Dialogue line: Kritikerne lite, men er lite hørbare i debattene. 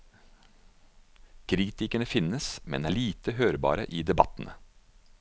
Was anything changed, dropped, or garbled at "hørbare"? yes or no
no